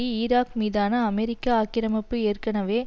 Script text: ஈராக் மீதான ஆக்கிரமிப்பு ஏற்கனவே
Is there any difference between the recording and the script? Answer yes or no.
yes